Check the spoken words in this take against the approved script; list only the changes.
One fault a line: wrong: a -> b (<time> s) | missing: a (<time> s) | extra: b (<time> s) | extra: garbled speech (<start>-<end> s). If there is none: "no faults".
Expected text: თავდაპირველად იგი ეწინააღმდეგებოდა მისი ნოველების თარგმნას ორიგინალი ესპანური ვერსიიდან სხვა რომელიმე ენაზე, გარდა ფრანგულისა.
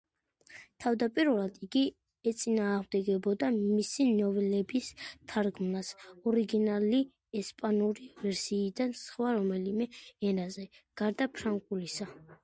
no faults